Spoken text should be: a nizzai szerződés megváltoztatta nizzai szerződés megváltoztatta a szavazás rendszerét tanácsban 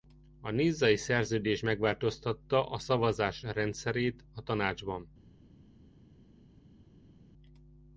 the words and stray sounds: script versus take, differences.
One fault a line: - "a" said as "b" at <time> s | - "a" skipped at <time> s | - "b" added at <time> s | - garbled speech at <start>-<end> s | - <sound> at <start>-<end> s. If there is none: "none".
- "nizzai szerződés megváltoztatta" skipped at 2.7 s
- "a" added at 4.3 s